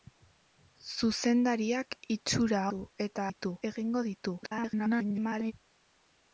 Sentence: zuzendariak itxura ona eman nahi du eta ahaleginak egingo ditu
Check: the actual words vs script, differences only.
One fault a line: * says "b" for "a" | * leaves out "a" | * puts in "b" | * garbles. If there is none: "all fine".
* leaves out "ona eman nahi"
* says "ditu" for "ahaleginak"
* garbles